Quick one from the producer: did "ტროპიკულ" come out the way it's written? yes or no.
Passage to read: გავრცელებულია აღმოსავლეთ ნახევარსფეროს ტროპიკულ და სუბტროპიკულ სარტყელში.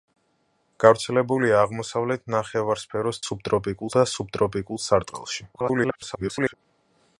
no